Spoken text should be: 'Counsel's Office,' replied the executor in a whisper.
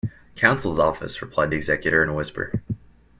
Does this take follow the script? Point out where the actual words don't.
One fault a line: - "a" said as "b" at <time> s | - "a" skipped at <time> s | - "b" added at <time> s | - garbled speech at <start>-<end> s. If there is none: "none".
none